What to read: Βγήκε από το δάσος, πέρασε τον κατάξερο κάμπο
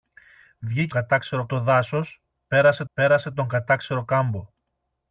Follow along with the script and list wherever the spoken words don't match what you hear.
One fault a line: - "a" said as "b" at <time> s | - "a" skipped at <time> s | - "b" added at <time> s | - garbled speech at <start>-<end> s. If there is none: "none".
- "από" said as "κατάξερο" at 0.9 s
- "πέρασε" added at 2.9 s